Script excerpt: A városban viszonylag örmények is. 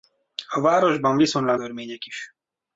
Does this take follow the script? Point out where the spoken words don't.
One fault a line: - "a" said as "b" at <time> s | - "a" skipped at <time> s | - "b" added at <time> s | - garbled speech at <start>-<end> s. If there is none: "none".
none